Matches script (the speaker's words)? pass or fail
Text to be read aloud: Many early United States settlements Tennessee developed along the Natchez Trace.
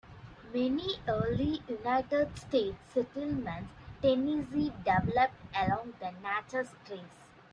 pass